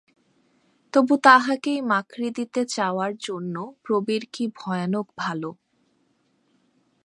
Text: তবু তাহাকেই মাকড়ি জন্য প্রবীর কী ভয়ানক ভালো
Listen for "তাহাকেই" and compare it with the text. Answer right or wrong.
right